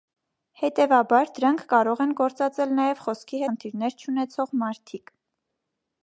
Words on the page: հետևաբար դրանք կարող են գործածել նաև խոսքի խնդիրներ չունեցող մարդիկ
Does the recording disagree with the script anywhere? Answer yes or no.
no